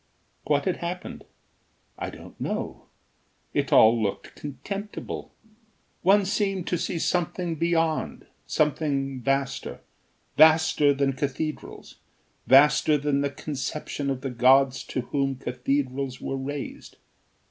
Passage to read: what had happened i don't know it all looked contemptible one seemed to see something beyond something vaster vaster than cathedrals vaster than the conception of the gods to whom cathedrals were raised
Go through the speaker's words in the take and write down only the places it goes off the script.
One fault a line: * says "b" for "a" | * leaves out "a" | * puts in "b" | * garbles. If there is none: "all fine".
all fine